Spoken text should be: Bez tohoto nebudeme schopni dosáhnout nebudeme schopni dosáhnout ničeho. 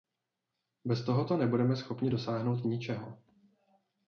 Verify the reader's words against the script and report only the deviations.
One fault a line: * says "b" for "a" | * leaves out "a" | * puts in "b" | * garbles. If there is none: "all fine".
* leaves out "nebudeme schopni dosáhnout"